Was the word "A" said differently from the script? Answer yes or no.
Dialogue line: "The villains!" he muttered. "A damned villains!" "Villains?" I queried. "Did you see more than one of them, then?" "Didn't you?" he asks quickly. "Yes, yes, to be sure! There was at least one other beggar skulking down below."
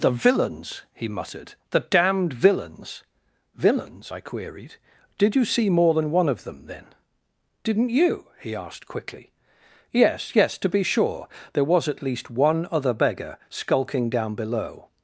yes